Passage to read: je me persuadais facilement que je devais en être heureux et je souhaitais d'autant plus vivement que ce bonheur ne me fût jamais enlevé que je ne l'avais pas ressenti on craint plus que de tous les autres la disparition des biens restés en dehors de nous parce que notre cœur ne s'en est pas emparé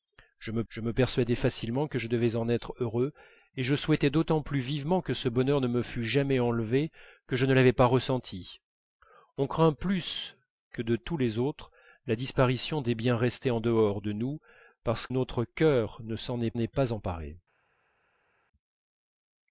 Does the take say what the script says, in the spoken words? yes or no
no